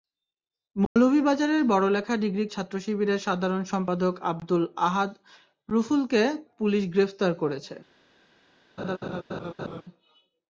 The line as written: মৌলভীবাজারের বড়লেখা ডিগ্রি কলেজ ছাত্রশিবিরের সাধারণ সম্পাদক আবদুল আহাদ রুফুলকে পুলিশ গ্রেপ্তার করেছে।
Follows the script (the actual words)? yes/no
no